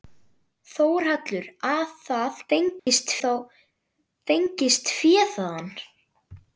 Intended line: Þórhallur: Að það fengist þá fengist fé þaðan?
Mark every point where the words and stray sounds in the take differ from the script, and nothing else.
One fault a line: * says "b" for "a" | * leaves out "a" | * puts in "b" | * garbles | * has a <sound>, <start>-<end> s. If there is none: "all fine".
* has a dropout, 2.8-2.9 s